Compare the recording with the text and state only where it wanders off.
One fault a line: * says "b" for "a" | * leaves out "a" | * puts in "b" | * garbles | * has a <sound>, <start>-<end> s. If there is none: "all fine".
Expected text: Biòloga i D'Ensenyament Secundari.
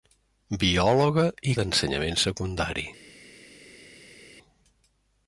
all fine